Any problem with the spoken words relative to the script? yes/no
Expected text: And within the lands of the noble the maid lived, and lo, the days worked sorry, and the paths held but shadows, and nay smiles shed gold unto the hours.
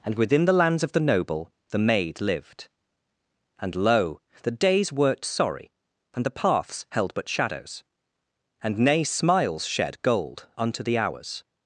no